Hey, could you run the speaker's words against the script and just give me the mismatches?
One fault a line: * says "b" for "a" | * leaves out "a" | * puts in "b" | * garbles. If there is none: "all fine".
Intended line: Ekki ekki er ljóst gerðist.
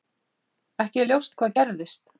* leaves out "ekki"
* puts in "hvað"